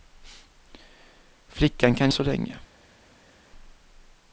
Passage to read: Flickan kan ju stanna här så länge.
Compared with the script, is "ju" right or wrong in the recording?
wrong